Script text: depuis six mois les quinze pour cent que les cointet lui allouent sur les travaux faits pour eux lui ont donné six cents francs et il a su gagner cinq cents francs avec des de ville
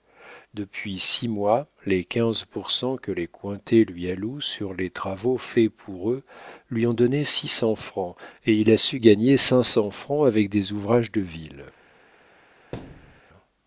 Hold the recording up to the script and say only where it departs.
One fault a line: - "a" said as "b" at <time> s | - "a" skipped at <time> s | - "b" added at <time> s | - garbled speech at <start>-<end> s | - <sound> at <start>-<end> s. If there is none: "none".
- "ouvrages" added at 10.7 s
- thud at 12.7-13.2 s